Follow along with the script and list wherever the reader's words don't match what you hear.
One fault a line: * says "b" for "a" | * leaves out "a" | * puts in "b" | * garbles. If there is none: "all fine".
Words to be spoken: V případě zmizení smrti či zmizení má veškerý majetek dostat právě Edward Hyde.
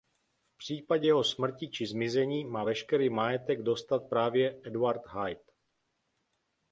* says "jeho" for "zmizení"